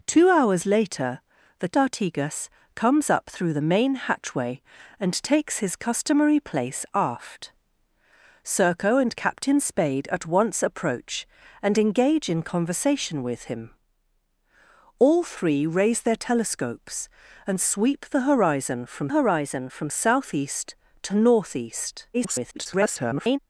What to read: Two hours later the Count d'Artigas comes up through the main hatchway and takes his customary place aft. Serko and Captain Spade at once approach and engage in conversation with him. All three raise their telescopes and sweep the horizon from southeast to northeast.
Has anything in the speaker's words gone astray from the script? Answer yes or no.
yes